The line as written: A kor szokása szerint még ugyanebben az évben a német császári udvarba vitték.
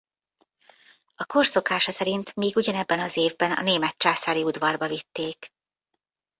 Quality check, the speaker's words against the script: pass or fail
pass